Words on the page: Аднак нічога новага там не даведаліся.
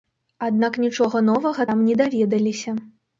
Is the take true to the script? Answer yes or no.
yes